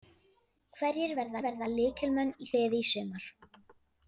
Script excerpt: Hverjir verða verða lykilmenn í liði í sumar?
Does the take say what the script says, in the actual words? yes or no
yes